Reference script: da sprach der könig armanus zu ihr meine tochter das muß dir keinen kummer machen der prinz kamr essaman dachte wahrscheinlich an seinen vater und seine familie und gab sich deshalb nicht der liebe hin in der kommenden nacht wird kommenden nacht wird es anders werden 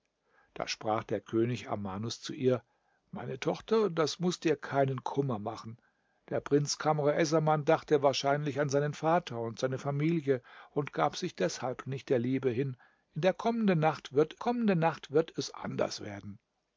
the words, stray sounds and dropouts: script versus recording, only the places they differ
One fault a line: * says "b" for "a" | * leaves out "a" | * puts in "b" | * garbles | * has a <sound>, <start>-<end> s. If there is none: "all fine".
all fine